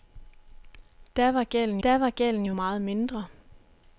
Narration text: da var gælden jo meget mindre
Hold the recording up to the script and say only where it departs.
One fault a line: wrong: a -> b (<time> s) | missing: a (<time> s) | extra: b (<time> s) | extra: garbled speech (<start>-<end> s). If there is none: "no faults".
extra: da var gælden (1.8 s)